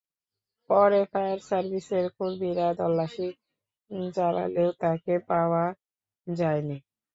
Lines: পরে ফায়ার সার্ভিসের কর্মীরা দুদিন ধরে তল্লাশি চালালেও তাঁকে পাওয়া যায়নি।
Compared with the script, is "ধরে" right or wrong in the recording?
wrong